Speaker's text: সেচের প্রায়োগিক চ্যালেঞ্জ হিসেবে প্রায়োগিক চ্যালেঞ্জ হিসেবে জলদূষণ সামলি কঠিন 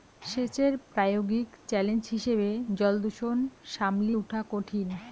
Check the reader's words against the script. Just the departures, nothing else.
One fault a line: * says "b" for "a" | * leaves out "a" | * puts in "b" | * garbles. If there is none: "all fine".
* leaves out "প্রায়োগিক চ্যালেঞ্জ হিসেবে"
* puts in "উঠা"